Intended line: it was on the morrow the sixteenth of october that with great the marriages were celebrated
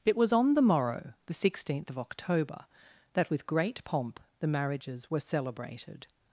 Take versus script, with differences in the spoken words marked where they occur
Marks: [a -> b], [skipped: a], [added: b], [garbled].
it was on the morrow the sixteenth of october that with great [added: pomp] the marriages were celebrated